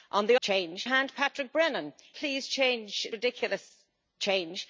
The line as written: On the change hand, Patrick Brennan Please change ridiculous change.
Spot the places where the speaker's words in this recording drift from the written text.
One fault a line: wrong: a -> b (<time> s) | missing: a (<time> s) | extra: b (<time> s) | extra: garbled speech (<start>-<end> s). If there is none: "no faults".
no faults